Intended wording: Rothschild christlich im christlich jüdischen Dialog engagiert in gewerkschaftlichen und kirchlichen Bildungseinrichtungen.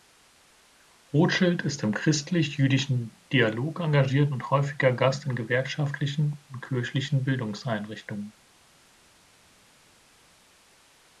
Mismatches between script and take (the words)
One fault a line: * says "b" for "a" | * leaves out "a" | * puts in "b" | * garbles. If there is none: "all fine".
* says "ist" for "christlich"
* puts in "und häufiger Gast"